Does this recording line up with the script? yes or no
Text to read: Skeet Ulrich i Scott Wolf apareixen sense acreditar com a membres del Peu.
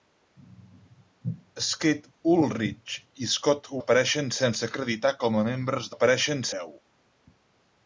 no